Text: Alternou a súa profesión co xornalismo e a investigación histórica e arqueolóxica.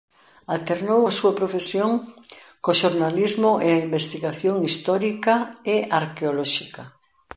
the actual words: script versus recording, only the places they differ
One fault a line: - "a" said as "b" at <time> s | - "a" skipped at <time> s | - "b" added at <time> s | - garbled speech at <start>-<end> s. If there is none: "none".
none